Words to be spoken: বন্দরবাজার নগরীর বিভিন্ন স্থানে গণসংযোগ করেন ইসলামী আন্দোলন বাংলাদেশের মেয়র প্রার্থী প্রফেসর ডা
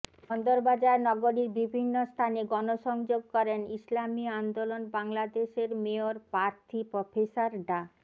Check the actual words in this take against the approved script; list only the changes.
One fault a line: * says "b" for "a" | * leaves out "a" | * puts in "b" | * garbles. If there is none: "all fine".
all fine